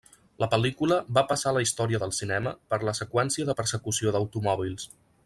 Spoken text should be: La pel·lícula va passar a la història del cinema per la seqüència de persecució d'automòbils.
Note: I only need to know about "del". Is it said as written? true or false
true